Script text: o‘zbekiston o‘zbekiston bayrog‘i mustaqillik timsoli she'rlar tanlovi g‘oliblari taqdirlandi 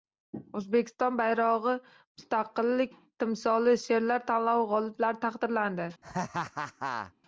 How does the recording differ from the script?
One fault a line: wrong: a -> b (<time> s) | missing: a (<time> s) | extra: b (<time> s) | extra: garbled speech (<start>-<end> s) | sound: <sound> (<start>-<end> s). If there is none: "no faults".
missing: o‘zbekiston (1.2 s)
sound: laugh (6.0-7.1 s)